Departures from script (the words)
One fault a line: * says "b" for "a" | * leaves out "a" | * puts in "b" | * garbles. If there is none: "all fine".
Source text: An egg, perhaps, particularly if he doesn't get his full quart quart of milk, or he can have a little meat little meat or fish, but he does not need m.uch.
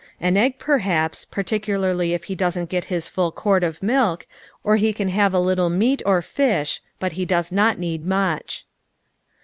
* leaves out "quart"
* leaves out "little meat"